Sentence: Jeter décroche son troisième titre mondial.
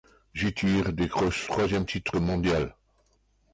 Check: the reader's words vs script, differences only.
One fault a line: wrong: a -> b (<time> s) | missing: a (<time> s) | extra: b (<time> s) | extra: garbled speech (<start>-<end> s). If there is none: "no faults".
missing: son (1.4 s)